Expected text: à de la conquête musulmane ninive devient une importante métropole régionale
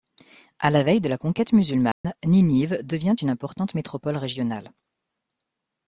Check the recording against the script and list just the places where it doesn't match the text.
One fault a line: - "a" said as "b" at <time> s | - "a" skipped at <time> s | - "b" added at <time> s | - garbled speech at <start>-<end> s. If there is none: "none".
- "la veille" added at 0.7 s